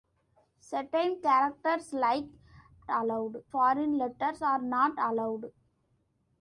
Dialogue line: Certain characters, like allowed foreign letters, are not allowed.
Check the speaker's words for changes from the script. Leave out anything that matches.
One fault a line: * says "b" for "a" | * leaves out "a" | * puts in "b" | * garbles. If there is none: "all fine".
all fine